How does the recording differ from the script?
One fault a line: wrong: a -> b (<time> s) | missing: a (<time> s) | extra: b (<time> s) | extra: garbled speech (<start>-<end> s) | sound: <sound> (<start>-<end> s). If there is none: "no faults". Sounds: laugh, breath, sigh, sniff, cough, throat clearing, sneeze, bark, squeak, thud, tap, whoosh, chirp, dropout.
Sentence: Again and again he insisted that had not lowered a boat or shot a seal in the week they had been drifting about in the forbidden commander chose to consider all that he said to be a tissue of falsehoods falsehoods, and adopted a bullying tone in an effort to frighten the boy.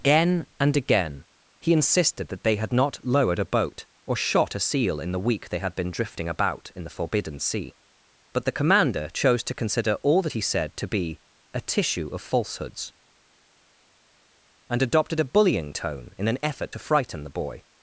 extra: they (2.4 s)
extra: sea but the (7.4 s)
missing: falsehoods (12.9 s)